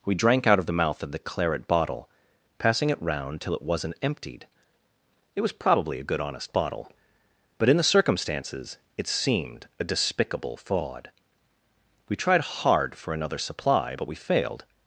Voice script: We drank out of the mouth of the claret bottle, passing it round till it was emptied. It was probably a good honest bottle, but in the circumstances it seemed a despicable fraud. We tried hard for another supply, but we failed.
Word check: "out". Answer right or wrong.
right